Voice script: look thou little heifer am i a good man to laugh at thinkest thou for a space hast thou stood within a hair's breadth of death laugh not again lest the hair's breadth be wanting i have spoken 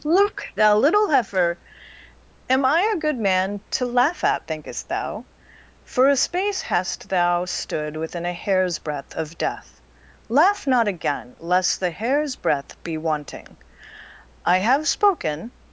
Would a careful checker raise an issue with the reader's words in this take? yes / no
no